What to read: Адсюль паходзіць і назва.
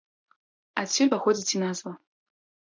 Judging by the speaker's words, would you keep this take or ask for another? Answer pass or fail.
pass